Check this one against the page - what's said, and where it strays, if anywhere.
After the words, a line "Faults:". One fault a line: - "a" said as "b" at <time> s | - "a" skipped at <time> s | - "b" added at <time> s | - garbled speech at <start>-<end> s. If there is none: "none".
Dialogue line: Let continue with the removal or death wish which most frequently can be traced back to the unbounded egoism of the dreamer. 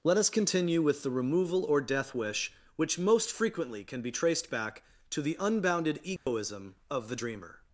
Let us continue with the removal or death wish which most frequently can be traced back to the unbounded egoism of the dreamer.
Faults:
- "us" added at 0.2 s